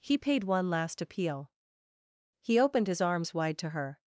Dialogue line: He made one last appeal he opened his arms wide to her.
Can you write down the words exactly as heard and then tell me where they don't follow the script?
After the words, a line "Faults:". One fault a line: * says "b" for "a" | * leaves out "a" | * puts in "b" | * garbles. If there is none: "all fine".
He paid one last appeal he opened his arms wide to her.
Faults:
* says "paid" for "made"